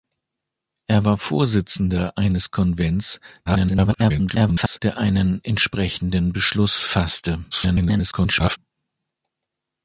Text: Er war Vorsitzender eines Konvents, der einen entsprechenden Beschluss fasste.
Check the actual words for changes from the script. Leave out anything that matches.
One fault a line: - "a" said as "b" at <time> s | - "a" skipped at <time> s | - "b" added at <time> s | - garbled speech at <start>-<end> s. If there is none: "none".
- garbled speech at 3.5-4.8 s
- garbled speech at 7.5-8.6 s